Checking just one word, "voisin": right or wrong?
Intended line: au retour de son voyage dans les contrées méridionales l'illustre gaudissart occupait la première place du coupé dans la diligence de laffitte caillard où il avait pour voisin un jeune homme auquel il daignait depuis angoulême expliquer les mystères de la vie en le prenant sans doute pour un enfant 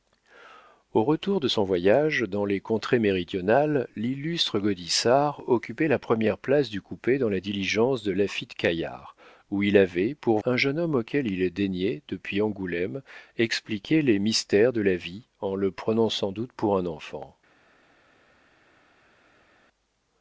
wrong